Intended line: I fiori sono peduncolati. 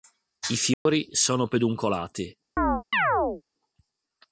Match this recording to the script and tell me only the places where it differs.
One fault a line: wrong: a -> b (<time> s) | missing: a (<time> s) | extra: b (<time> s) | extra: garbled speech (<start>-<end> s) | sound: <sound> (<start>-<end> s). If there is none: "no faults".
sound: dropout (0.7-0.9 s)
sound: chirp (2.6-3.4 s)